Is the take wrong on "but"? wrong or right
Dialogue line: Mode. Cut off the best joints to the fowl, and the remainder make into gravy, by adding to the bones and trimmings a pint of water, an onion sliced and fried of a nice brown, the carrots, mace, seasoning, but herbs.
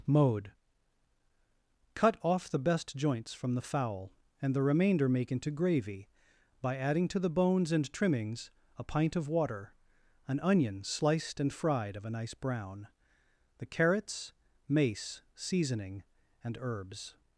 wrong